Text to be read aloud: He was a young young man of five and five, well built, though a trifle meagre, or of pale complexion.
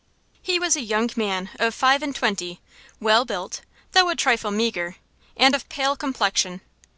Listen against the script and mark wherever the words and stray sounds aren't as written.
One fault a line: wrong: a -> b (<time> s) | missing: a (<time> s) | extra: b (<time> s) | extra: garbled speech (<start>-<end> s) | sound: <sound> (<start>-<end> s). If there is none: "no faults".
missing: young (1.1 s)
wrong: five -> twenty (2.1 s)
wrong: or -> and (5.4 s)